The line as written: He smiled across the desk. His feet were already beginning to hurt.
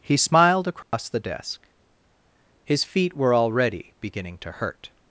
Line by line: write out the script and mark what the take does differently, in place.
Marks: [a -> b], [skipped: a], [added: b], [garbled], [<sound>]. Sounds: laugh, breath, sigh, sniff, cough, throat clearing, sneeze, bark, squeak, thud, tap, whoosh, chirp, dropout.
He smiled across [dropout] the desk. His feet were already beginning to hurt.